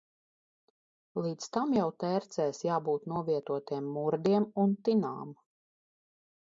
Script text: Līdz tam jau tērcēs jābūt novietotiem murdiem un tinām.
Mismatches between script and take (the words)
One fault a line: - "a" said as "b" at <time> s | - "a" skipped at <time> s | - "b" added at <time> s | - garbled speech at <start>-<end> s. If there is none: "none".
none